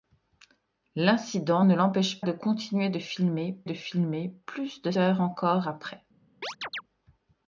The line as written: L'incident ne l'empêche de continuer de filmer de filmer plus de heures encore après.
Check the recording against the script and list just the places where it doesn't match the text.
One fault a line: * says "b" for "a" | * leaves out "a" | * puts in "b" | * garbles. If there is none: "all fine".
all fine